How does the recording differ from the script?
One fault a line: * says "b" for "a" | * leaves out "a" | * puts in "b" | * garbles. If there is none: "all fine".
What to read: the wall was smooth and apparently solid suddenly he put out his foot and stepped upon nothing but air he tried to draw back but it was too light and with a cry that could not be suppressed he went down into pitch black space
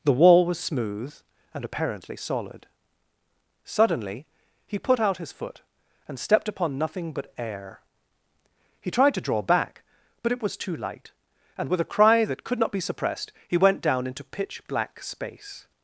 all fine